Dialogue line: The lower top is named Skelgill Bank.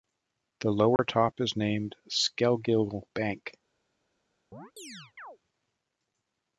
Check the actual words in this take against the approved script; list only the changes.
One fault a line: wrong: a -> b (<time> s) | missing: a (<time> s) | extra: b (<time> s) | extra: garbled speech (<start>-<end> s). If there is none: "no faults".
no faults